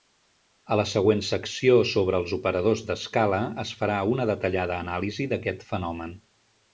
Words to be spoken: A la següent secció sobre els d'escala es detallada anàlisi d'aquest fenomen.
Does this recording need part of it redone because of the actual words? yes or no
yes